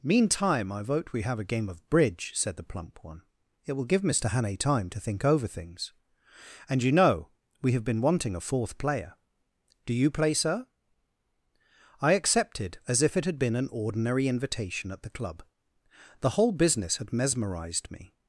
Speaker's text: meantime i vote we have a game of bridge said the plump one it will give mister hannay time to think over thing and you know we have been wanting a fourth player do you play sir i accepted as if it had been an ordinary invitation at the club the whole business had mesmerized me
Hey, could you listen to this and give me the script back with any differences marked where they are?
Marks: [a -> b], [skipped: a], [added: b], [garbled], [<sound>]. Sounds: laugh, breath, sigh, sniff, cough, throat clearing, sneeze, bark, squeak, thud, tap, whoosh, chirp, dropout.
meantime i vote we have a game of bridge said the plump one it will give mister hannay time to think over [thing -> things] and you know we have been wanting a fourth player do you play sir i accepted as if it had been an ordinary invitation at the club the whole business had mesmerized me